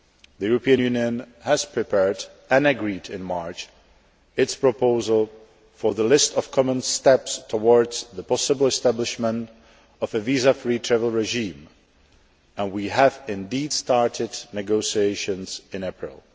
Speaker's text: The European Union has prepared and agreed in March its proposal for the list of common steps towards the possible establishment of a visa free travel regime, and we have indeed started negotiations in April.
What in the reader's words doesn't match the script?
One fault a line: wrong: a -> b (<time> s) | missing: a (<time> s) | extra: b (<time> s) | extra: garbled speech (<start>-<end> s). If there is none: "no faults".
no faults